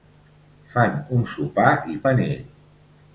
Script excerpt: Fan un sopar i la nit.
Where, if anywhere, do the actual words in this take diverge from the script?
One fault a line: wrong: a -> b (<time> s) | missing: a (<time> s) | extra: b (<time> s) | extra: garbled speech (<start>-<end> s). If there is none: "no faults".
no faults